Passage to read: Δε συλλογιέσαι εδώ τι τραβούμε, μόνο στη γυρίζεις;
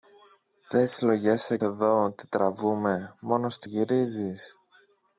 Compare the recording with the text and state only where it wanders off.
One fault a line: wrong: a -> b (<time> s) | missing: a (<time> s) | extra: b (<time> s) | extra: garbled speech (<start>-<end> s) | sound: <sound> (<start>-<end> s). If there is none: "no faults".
no faults